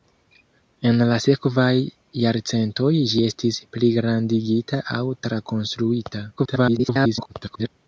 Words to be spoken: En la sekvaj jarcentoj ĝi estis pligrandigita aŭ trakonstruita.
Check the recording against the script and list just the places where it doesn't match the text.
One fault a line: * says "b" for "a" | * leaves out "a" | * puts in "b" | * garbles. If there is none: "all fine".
* garbles